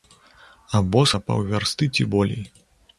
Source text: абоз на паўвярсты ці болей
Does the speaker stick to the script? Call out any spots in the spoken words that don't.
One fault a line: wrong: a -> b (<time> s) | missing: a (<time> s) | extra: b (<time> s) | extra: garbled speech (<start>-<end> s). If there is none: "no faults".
no faults